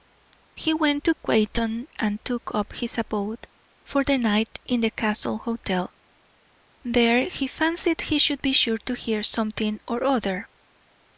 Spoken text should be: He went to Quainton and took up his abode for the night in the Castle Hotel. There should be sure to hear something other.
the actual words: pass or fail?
fail